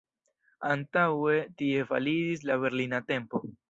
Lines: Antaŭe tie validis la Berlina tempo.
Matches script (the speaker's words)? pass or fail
pass